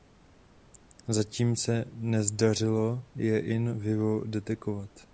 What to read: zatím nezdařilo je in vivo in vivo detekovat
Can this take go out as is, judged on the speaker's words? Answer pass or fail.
fail